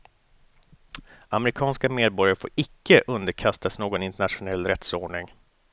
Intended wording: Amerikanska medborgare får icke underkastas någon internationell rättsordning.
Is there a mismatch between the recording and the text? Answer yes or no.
no